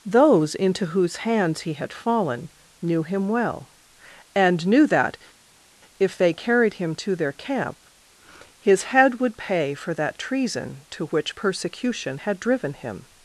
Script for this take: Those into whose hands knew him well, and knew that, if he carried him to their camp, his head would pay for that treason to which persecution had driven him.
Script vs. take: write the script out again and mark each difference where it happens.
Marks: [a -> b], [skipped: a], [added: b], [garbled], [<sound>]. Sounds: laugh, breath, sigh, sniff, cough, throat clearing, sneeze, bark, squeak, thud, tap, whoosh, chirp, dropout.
Those into whose hands [added: he had fallen] knew him well, and knew that, if [he -> they] carried him to their camp, his head would pay for that treason to which persecution had driven him.